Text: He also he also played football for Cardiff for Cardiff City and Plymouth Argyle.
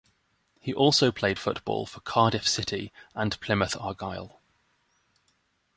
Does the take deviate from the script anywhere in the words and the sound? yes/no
yes